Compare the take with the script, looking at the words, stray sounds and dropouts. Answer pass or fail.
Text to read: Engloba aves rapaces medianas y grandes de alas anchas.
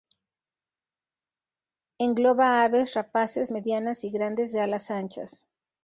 pass